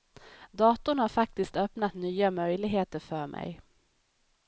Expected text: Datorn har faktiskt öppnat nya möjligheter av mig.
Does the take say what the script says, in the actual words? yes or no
no